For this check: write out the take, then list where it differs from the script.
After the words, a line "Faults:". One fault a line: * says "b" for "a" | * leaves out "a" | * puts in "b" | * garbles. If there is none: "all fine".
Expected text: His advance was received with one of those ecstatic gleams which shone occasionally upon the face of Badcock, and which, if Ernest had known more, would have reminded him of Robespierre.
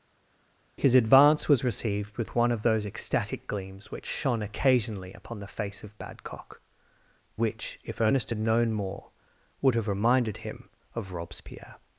His advance was received with one of those ecstatic gleams which shone occasionally upon the face of Badcock, which, if Ernest had known more, would have reminded him of Robespierre.
Faults:
* leaves out "and"